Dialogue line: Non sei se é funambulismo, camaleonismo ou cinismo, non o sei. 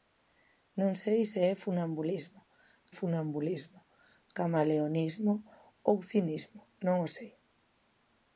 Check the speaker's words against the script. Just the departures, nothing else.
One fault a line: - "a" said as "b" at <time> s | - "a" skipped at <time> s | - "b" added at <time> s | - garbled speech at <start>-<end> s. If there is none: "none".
- "funambulismo" added at 3.0 s